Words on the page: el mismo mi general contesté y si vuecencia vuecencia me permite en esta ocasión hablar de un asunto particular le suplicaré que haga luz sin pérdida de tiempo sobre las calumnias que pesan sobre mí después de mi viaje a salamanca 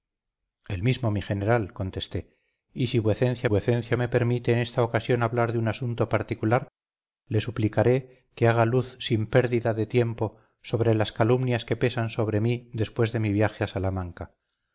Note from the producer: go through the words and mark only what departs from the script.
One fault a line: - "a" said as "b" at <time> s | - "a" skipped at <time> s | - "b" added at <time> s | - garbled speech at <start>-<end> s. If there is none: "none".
none